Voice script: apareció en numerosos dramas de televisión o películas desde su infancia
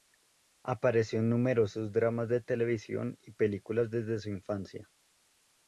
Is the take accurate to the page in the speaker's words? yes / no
no